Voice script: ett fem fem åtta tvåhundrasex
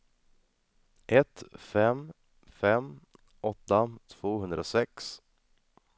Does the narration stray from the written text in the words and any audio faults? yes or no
no